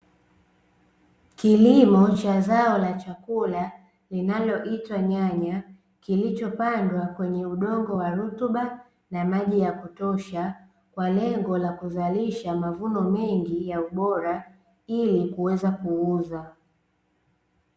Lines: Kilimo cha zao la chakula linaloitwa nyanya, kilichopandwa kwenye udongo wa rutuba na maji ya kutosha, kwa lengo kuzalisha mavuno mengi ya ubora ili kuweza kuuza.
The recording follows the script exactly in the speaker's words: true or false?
false